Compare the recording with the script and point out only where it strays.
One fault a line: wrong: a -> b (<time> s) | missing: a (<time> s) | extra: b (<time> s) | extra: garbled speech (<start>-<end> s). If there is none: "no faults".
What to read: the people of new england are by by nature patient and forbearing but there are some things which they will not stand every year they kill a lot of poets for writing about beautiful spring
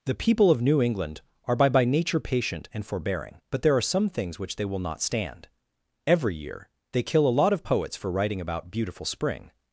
no faults